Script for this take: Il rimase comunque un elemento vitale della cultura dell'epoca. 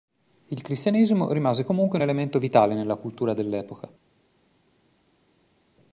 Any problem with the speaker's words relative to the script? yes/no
yes